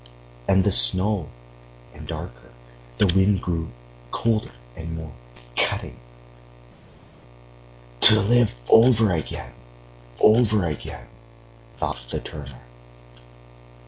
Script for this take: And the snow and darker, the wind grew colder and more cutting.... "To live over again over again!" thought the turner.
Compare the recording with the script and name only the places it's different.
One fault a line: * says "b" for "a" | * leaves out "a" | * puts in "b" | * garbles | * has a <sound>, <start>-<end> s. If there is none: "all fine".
all fine